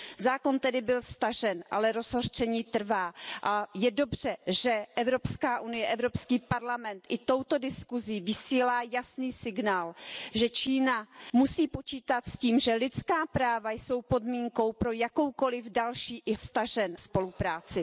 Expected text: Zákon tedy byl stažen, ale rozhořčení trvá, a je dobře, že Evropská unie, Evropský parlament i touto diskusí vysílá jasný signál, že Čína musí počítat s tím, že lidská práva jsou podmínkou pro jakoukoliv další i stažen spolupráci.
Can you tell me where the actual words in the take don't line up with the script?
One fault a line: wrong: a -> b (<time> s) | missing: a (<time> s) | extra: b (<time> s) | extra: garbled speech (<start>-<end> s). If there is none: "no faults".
no faults